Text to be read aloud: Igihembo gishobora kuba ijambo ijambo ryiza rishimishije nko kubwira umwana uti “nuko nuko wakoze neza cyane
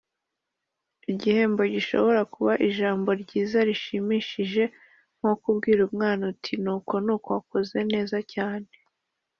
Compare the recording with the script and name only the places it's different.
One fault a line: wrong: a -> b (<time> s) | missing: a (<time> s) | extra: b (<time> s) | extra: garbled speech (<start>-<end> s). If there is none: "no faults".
missing: ijambo (3.1 s)